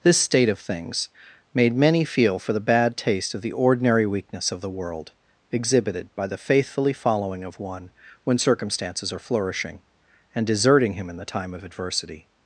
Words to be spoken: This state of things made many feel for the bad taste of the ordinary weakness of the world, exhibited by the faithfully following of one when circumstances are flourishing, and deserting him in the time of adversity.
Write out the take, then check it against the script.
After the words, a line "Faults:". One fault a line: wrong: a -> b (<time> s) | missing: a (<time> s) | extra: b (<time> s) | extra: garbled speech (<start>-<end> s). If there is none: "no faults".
This state of things made many feel for the bad taste of the ordinary weakness of the world, exhibited by the faithfully following of one when circumstances are flourishing, and deserting him in the time of adversity.
Faults:
no faults